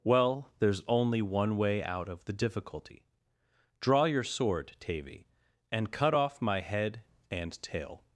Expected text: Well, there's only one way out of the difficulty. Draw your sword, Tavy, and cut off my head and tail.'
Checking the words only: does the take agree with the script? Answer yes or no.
yes